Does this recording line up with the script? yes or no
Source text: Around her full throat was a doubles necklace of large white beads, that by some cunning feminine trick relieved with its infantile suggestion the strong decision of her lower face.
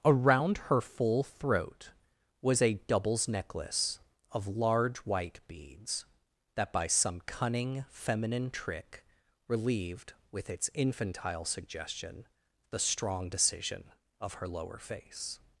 yes